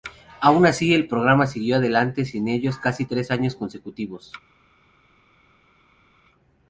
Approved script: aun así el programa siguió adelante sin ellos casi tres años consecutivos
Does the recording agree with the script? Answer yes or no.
yes